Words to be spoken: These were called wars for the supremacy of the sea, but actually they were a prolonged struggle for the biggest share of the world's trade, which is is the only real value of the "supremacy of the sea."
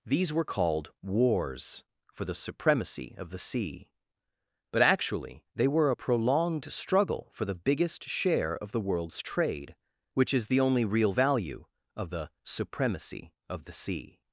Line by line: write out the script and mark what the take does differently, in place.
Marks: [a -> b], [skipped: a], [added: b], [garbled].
These were called wars for the supremacy of the sea, but actually they were a prolonged struggle for the biggest share of the world's trade, which is [skipped: is] the only real value of the "supremacy of the sea."